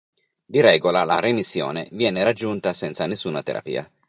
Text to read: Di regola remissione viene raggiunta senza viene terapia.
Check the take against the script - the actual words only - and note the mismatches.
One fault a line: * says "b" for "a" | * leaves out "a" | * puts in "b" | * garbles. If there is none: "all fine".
* puts in "la"
* says "nessuna" for "viene"